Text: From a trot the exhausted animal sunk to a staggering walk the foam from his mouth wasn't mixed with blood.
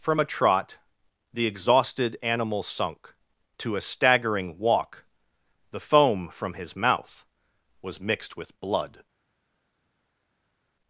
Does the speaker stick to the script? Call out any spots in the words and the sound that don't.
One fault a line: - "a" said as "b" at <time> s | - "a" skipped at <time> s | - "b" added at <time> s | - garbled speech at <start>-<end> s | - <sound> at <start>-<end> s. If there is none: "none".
- "wasn't" said as "was" at 7.8 s